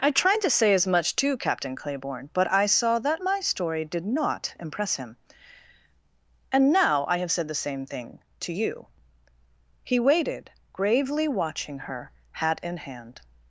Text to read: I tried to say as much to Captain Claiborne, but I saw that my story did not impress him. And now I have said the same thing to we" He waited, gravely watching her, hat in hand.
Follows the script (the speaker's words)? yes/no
no